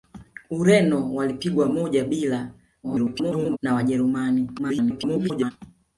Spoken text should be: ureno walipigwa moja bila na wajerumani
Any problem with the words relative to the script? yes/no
yes